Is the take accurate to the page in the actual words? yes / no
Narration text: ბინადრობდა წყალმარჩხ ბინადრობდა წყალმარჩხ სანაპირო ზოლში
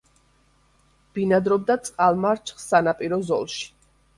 no